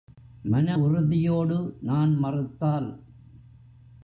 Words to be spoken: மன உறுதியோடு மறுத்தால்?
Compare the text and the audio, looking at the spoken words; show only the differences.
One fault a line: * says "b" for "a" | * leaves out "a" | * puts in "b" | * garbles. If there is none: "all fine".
* puts in "நான்"